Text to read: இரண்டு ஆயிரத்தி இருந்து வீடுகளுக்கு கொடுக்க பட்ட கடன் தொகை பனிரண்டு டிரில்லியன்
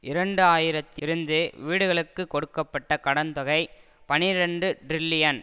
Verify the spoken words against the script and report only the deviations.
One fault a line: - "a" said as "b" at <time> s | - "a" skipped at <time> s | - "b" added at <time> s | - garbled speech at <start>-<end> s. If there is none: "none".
none